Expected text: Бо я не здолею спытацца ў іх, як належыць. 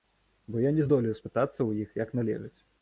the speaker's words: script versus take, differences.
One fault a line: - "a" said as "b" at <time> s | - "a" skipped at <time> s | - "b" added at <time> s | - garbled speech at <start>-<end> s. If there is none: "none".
none